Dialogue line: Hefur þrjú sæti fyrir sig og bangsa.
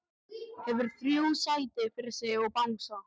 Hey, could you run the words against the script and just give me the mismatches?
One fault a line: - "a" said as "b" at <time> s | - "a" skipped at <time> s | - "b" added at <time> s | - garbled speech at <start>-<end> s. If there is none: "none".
none